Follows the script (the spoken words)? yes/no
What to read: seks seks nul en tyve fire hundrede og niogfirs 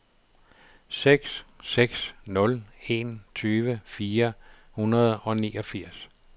yes